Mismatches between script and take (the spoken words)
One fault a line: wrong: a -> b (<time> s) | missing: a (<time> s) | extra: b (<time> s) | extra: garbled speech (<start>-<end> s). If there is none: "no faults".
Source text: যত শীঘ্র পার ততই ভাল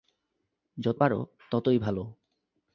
missing: শীঘ্র (1.0 s)